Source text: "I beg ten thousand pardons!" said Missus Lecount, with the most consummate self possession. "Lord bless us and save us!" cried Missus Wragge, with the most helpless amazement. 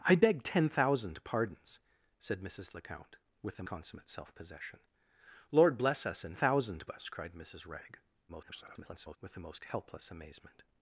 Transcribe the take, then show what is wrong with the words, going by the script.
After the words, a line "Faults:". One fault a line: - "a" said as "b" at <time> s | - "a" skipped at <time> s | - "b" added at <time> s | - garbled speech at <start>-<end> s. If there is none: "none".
"I beg ten thousand pardons!" said Missus Lecount, with the consummate self possession. "Lord bless us and thousand us!" cried Missus Wragge, [garbled] with the most helpless amazement.
Faults:
- "most" skipped at 3.6 s
- "save" said as "thousand" at 6.3 s
- garbled speech at 8.3-9.2 s